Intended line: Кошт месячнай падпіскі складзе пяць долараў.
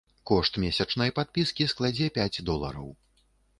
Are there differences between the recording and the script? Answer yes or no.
no